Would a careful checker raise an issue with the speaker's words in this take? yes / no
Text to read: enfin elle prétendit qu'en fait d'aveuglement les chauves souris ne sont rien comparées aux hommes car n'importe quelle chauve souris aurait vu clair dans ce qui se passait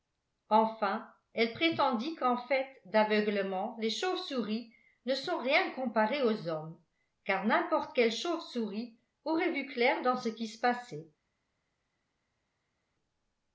no